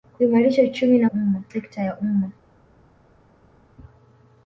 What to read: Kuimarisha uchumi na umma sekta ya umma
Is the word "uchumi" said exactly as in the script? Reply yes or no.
yes